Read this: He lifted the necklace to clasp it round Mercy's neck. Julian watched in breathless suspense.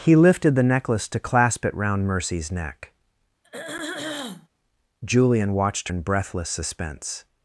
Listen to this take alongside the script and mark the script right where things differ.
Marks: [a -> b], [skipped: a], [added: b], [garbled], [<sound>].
He lifted the necklace to clasp it round Mercy's neck. [throat clearing] Julian watched in breathless suspense.